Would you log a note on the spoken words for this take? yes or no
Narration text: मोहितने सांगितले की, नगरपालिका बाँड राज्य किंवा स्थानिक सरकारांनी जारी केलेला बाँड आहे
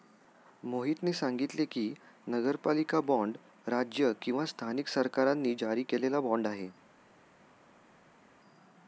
no